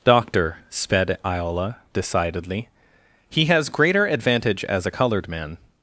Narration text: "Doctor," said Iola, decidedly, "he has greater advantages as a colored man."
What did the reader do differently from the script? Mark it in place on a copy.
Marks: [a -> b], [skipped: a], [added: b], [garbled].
"Doctor," [said -> sped] Iola, decidedly, "he has greater [advantages -> advantage] as a colored man."